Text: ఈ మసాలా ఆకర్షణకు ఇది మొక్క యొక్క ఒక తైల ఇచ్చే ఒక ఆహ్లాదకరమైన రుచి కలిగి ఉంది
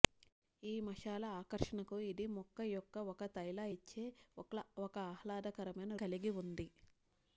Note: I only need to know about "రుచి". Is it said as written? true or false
false